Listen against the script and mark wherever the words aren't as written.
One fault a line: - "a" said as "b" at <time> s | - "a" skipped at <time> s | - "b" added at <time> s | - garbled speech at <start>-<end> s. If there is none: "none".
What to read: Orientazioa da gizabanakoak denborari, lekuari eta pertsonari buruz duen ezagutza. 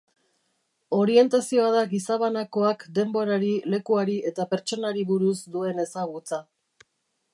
none